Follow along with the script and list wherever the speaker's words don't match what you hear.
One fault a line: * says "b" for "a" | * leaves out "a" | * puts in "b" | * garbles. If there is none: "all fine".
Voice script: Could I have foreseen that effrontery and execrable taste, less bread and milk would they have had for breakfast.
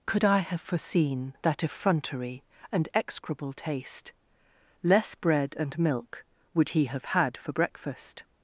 * says "he" for "they"